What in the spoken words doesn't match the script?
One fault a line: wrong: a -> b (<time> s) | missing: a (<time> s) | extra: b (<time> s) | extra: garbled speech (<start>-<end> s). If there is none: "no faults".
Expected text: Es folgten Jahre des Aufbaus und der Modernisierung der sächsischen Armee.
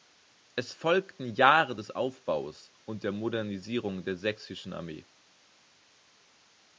no faults